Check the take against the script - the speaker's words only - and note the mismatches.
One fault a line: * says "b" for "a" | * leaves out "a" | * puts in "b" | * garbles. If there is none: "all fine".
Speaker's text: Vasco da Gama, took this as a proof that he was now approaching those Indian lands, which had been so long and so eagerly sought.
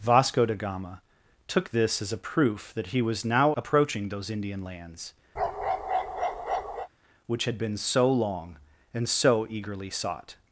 all fine